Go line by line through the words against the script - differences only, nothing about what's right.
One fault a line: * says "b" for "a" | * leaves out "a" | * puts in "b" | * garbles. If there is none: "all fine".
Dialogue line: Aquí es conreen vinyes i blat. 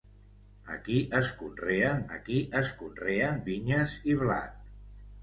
* puts in "aquí es conreen"